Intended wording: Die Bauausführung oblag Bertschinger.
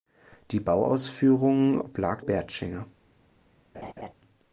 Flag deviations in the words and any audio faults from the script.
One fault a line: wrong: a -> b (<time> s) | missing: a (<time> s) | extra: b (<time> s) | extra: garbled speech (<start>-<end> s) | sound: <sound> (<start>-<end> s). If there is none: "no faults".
sound: laugh (3.7-4.1 s)